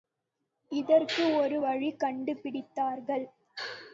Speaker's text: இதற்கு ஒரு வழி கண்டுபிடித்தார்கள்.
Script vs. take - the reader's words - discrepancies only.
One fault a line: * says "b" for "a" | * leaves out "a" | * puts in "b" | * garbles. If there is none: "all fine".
all fine